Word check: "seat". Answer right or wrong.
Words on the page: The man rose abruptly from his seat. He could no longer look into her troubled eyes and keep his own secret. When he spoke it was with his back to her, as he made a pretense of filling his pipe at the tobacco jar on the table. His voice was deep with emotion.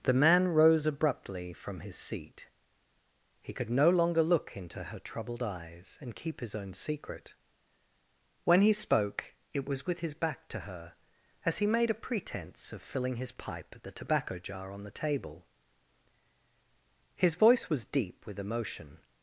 right